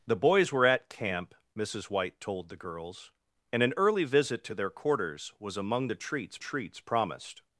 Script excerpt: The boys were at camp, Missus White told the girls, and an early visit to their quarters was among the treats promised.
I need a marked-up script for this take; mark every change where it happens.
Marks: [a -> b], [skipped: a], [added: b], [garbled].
The boys were at camp, Missus White told the girls, and an early visit to their quarters was among the treats [added: treats] promised.